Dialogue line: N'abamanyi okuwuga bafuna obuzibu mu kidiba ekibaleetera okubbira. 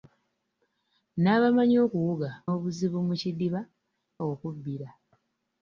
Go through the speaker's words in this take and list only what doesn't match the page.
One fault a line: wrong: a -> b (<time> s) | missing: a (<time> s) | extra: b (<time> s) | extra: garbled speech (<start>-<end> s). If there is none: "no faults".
missing: bafuna (2.3 s)
missing: ekibaleetera (3.6 s)